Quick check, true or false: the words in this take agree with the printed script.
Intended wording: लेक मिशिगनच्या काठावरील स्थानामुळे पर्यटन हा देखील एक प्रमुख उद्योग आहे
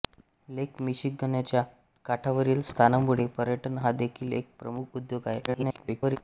false